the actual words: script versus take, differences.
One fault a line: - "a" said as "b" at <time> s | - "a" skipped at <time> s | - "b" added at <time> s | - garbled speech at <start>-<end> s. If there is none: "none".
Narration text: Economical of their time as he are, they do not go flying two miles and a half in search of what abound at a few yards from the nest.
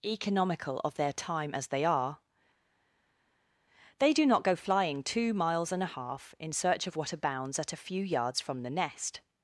- "he" said as "they" at 1.7 s
- "abound" said as "abounds" at 7.1 s